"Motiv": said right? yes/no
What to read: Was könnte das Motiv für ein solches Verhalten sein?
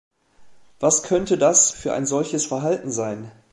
no